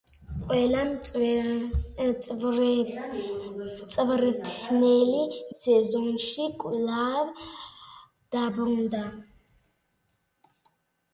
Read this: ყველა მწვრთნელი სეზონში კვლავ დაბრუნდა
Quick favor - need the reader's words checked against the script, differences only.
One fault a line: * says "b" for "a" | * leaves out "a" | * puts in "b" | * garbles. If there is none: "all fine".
all fine